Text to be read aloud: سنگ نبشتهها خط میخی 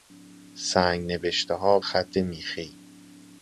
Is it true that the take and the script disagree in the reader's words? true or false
false